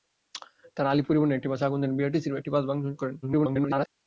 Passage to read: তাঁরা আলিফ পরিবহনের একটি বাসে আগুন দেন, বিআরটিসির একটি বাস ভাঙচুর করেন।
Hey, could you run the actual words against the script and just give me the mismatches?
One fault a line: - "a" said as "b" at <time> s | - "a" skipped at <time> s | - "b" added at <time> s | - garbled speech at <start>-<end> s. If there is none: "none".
- garbled speech at 3.2-3.9 s